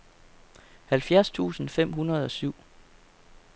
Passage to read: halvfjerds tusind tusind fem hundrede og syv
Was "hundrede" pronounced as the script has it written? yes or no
yes